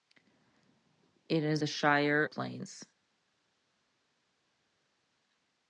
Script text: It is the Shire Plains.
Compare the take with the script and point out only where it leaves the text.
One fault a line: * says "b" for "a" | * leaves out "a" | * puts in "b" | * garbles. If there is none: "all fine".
all fine